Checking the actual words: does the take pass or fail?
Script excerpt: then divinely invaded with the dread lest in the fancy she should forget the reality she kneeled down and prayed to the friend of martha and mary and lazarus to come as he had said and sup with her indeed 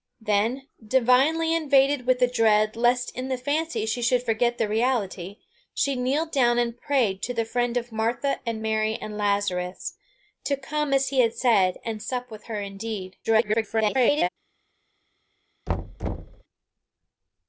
fail